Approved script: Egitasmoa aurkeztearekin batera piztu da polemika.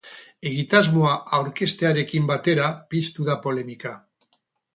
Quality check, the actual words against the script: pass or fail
pass